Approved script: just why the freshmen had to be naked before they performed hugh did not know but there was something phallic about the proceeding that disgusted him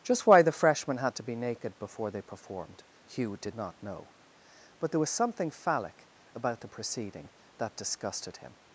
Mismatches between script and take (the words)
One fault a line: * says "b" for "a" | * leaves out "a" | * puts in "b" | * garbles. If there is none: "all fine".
all fine